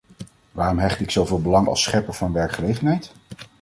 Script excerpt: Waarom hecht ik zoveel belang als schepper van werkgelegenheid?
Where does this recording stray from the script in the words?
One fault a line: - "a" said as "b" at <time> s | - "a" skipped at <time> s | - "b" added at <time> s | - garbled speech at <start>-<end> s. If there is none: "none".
none